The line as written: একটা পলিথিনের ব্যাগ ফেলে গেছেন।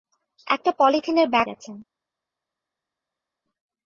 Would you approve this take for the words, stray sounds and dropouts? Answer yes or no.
no